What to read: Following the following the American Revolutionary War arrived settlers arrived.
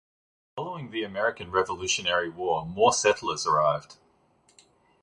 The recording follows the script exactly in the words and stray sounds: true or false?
false